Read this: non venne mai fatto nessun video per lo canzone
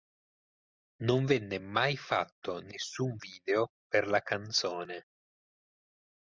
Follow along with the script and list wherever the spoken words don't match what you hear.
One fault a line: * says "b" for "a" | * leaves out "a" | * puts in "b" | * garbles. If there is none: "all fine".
* says "la" for "lo"